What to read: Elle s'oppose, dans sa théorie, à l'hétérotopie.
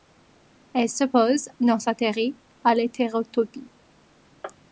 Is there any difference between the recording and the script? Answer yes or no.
no